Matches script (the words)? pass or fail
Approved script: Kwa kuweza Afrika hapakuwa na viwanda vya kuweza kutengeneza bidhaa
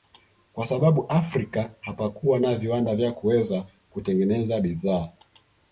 fail